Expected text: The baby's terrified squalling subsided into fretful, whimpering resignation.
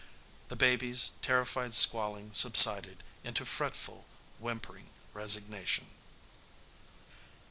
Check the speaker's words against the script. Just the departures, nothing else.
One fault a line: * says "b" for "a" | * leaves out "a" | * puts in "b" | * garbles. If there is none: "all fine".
all fine